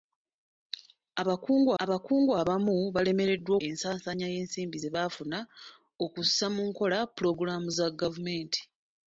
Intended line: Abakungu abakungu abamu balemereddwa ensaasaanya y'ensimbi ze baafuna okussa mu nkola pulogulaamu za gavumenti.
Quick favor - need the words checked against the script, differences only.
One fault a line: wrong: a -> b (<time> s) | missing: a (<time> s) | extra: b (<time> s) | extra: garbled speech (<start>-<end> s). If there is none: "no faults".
no faults